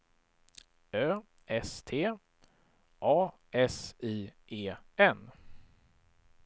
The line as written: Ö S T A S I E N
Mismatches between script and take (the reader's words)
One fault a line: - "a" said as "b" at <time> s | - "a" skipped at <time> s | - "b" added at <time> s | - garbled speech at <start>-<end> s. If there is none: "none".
none